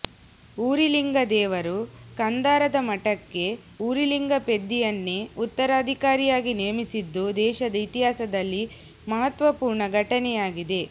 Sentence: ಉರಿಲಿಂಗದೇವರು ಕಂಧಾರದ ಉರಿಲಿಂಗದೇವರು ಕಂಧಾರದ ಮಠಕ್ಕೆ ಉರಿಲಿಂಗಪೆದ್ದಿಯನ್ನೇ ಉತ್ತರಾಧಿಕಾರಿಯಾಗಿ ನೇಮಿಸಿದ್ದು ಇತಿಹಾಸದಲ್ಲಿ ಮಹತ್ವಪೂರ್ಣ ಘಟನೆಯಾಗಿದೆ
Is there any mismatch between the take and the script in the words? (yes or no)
yes